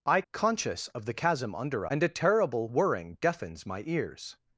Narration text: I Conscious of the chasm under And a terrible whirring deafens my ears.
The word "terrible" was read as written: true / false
true